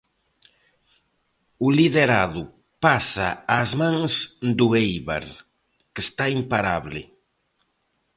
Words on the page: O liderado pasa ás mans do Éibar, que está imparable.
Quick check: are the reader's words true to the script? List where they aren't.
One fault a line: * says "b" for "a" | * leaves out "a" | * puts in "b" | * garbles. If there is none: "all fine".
all fine